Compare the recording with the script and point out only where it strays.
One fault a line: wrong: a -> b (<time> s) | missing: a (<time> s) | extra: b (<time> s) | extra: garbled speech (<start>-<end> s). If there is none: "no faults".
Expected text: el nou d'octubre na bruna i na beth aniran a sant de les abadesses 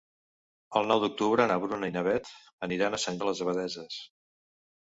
no faults